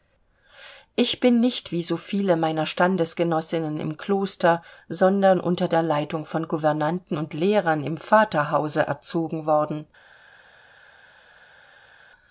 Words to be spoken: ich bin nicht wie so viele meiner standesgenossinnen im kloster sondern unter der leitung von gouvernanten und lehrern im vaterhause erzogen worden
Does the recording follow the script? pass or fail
pass